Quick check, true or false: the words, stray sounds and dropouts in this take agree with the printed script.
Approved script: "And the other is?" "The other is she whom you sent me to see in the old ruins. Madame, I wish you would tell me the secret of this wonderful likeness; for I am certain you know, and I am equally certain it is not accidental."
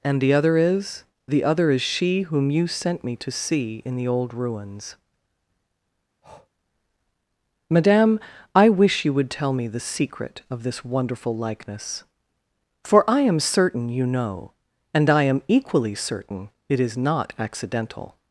false